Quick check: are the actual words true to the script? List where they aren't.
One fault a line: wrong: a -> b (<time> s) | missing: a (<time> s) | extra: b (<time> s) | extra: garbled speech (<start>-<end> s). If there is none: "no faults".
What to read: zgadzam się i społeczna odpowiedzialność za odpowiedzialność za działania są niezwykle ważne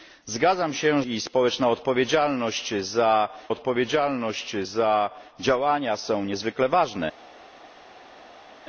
no faults